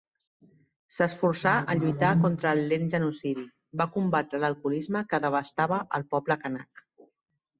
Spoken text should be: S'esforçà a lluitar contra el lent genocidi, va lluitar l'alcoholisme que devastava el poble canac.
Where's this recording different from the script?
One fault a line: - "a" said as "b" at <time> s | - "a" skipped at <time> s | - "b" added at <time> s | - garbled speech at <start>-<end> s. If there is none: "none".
- "lluitar" said as "combatre" at 4.0 s